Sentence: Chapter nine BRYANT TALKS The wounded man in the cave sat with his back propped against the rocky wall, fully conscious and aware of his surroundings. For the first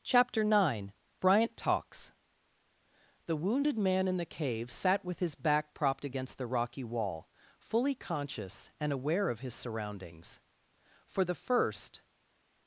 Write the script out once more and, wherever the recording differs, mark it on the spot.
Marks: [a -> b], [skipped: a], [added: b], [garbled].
Chapter nine BRYANT TALKS The wounded man in the cave sat with his back propped against the rocky wall, fully conscious and aware of his surroundings. For the first